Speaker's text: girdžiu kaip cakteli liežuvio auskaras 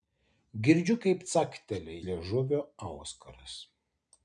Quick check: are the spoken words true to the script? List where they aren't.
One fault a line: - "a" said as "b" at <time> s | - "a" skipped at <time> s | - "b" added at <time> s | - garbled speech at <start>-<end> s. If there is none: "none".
none